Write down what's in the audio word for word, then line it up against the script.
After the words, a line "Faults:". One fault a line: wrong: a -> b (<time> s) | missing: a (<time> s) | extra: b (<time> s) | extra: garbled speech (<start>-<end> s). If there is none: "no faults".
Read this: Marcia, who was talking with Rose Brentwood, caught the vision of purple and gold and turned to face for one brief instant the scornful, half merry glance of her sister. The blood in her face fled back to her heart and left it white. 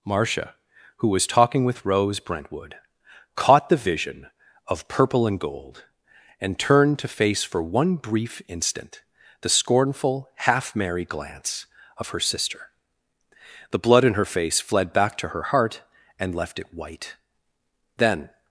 Marcia, who was talking with Rose Brentwood, caught the vision of purple and gold and turned to face for one brief instant the scornful, half merry glance of her sister. The blood in her face fled back to her heart and left it white. Then
Faults:
extra: Then (18.0 s)